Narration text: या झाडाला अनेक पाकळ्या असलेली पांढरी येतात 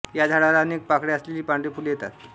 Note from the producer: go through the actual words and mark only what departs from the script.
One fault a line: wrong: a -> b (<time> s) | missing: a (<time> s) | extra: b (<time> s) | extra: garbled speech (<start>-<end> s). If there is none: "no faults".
extra: फुले (1.7 s)